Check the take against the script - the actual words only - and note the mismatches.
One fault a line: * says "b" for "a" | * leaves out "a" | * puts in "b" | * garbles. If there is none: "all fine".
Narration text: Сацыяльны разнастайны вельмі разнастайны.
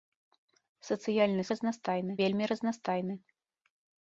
all fine